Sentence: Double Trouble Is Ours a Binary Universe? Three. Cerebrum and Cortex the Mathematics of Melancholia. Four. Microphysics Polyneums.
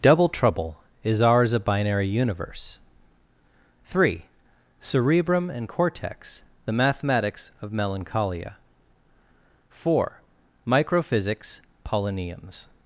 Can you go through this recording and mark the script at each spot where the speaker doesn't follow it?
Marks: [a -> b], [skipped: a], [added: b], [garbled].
Double Trouble Is Ours a Binary Universe? Three. Cerebrum and Cortex the Mathematics of Melancholia. Four. Microphysics Polyneums.